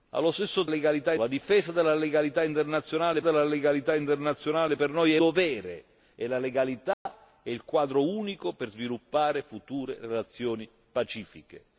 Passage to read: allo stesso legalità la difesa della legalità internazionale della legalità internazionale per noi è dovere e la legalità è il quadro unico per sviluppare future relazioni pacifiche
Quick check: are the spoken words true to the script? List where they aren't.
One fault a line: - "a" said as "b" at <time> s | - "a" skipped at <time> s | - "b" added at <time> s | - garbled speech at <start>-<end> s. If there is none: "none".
none